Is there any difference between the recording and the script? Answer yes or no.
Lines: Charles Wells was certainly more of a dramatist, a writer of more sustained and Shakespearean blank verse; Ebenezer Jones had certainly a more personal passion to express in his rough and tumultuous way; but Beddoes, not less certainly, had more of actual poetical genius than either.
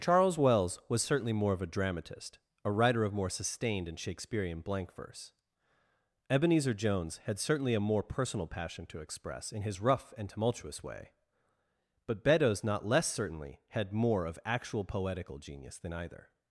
no